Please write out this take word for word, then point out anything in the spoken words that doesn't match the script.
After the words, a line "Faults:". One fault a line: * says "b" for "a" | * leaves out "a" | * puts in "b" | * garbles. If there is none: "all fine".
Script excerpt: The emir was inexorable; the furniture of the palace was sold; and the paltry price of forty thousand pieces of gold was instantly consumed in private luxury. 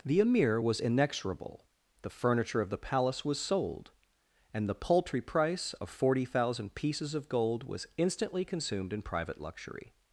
The emir was inexorable; the furniture of the palace was sold; and the paltry price of forty thousand pieces of gold was instantly consumed in private luxury.
Faults:
all fine